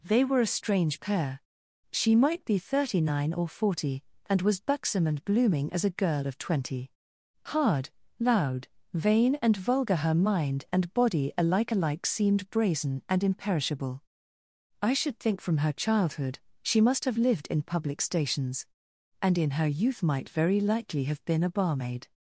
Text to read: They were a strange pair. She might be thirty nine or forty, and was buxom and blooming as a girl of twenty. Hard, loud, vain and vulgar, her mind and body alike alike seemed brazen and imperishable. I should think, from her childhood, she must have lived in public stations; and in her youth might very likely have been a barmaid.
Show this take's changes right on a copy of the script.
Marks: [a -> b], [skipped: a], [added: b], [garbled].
They were a strange pair. She might be thirty nine or forty, and was buxom and blooming as a girl of twenty. Hard, loud, vain and vulgar, her mind and body alike alike seemed brazen and imperishable. I should think, from her childhood, she must have lived in public stations; and in her youth might very likely have been a barmaid.